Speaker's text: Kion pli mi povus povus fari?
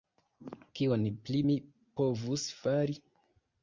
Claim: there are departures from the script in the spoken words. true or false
true